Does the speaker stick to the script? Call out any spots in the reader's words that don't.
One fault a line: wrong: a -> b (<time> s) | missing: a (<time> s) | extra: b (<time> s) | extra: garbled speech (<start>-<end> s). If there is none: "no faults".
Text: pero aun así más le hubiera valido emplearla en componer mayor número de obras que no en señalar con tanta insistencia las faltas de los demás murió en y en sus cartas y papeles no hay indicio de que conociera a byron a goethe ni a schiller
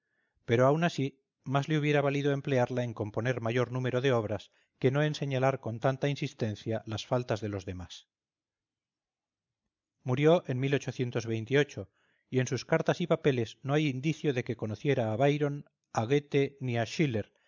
no faults